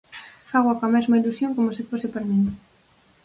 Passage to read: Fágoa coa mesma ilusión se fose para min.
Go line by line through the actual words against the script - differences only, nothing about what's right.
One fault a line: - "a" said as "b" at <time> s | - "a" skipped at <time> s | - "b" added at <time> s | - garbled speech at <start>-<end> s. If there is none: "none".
- "como" added at 1.5 s